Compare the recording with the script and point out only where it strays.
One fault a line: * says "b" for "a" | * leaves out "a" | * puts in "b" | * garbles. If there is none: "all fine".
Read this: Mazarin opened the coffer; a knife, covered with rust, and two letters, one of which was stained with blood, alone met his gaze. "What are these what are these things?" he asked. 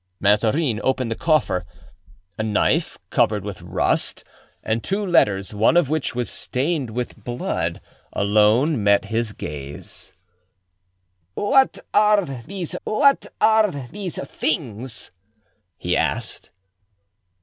all fine